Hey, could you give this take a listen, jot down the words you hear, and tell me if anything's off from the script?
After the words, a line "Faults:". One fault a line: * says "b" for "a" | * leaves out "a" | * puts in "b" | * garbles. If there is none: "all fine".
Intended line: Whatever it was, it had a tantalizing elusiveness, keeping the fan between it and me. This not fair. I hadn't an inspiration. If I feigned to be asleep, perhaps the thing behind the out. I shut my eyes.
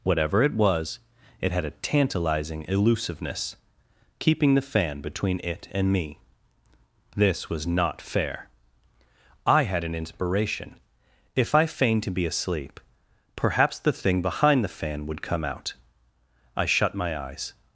Whatever it was, it had a tantalizing elusiveness, keeping the fan between it and me. This was not fair. I had an inspiration. If I feigned to be asleep, perhaps the thing behind the fan would come out. I shut my eyes.
Faults:
* puts in "was"
* says "had" for "hadn't"
* puts in "fan would come"